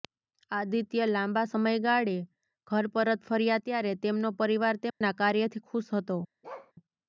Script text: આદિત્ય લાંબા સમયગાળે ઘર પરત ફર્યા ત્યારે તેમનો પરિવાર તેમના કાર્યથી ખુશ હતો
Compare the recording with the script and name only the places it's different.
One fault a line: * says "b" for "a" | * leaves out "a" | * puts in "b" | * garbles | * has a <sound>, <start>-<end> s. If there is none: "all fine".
* has a dropout, 4.9-5.0 s
* has a bark, 6.4-6.7 s